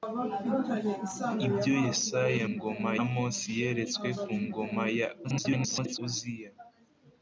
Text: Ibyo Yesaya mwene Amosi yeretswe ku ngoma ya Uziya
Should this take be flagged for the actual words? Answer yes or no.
yes